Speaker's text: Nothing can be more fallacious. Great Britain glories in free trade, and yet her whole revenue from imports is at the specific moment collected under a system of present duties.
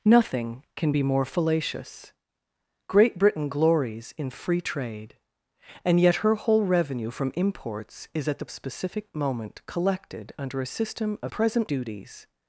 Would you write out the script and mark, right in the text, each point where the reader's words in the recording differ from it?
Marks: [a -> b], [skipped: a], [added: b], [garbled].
Nothing can be more fallacious. Great Britain glories in free trade, and yet her whole revenue from imports is at the specific moment collected under a system of present duties.